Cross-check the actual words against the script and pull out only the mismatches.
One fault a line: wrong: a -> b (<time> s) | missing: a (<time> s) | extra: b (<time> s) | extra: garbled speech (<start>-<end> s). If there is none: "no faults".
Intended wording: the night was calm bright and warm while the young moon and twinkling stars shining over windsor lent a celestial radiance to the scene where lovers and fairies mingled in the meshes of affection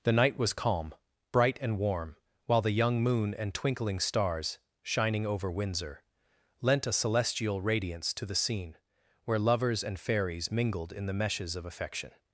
no faults